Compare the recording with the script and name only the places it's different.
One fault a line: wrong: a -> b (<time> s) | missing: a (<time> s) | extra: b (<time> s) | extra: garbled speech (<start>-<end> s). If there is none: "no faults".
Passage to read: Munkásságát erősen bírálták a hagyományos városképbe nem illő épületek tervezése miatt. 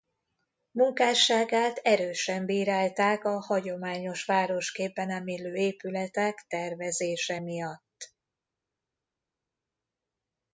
no faults